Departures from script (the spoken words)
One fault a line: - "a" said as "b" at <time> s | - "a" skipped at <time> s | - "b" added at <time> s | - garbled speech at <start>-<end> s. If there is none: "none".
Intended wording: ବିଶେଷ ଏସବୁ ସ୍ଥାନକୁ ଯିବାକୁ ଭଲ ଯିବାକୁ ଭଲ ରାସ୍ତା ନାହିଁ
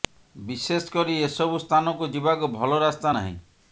- "କରି" added at 0.9 s
- "ଯିବାକୁ ଭଲ" skipped at 2.8 s